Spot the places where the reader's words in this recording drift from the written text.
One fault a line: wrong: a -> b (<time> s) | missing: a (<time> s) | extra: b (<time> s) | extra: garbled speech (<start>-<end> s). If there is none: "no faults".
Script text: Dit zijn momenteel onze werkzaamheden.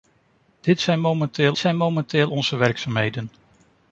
extra: zijn momenteel (1.6 s)